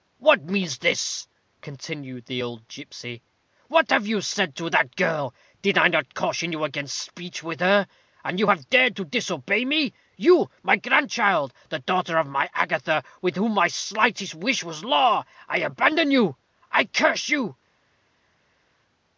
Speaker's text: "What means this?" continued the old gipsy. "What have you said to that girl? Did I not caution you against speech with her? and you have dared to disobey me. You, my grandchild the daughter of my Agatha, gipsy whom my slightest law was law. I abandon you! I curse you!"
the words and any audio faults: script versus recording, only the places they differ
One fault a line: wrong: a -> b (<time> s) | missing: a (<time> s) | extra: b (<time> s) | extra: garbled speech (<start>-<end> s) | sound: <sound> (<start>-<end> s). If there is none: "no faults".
wrong: gipsy -> with (13.2 s)
wrong: law -> wish (14.3 s)